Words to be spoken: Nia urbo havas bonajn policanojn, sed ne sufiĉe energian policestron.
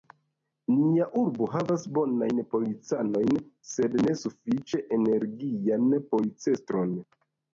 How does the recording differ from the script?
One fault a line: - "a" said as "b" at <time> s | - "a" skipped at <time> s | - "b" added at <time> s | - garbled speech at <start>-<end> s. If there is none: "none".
none